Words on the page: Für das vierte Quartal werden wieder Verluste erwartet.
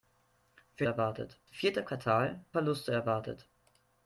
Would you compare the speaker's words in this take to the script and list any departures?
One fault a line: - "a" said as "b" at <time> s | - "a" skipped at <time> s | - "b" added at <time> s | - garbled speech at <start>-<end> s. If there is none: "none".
- "das" said as "erwartet" at 0.8 s
- "werden wieder" skipped at 2.4 s